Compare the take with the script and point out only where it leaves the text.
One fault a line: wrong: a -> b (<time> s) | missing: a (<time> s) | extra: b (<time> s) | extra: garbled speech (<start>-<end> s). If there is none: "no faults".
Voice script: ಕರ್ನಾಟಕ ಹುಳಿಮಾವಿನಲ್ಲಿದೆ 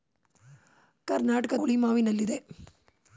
no faults